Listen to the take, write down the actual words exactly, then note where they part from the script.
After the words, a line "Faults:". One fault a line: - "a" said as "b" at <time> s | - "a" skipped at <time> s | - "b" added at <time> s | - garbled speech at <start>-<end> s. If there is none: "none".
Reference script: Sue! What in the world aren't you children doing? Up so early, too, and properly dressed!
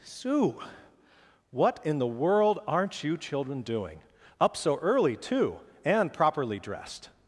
Sue! What in the world aren't you children doing? Up so early, too, and properly dressed!
Faults:
none